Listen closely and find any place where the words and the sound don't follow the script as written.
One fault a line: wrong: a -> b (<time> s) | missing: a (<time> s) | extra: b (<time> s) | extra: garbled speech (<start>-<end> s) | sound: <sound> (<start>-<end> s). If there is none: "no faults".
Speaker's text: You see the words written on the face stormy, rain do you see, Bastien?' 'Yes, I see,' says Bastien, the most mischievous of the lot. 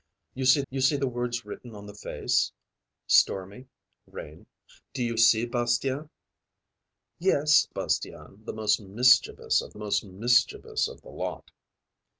extra: you see (0.7 s)
wrong: I see says Bastien the -> Bastien the most mischievous of (7.7 s)